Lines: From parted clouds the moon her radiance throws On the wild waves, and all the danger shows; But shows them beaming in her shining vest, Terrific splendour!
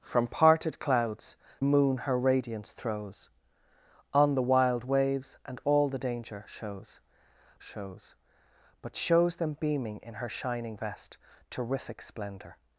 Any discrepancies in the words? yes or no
yes